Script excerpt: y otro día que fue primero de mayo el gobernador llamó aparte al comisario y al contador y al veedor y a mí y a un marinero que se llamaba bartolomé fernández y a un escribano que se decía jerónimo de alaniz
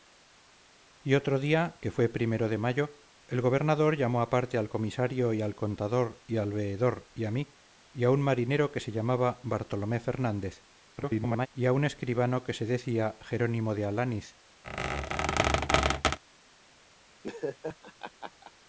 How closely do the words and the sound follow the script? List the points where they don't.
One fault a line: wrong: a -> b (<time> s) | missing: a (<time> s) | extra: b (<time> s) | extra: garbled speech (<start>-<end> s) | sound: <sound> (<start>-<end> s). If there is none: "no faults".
extra: garbled speech (11.0-11.5 s)
sound: squeak (14.6-16.2 s)
sound: laugh (17.2-18.5 s)